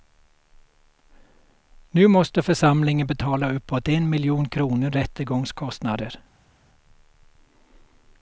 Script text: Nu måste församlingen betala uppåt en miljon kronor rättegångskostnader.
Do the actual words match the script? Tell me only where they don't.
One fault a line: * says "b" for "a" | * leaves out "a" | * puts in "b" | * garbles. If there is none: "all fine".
all fine